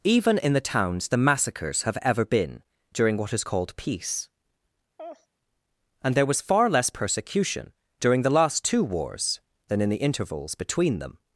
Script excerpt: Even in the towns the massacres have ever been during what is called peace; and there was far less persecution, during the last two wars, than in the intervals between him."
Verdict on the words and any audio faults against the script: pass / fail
fail